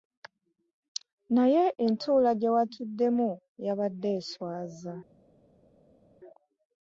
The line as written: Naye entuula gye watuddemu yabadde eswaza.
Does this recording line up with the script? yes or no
yes